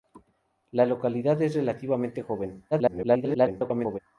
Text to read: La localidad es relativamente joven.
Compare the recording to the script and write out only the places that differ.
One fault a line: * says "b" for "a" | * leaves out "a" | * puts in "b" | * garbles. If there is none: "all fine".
* garbles